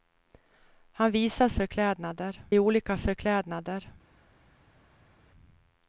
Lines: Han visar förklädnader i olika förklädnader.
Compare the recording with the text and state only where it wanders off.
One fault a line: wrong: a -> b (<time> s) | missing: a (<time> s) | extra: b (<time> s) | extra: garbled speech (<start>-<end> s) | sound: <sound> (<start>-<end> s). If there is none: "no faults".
no faults